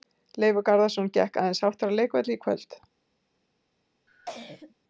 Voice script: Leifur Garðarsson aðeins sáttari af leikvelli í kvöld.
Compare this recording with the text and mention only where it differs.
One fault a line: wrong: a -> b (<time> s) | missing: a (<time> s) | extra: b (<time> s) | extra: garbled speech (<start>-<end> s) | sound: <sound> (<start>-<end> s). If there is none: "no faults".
extra: gekk (1.2 s)
sound: cough (4.1-4.7 s)